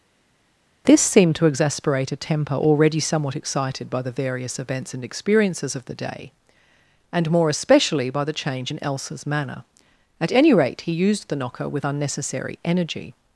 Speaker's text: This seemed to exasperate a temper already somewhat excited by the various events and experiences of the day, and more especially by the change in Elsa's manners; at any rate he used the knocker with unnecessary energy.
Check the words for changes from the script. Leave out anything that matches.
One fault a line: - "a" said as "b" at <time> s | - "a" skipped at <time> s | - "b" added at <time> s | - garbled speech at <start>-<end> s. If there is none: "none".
- "manners" said as "manner" at 9.3 s